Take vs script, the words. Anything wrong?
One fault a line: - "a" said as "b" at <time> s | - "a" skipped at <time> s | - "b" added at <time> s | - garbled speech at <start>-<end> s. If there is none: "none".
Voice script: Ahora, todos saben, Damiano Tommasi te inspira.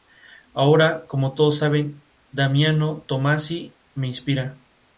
- "como" added at 1.1 s
- "te" said as "me" at 3.9 s